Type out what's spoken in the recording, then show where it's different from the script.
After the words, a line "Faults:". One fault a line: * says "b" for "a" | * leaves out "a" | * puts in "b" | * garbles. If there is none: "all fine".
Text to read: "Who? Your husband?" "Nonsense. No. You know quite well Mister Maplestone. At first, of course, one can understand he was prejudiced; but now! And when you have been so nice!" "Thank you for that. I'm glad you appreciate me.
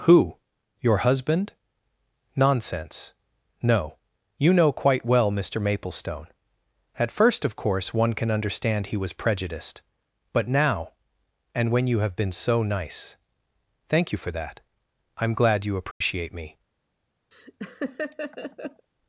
"Who? Your husband?" "Nonsense. No. You know quite well Mister Maplestone. At first, of course, one can understand he was prejudiced; but now! And when you have been so nice!" "Thank you for that. I'm glad you appreciate me.
Faults:
all fine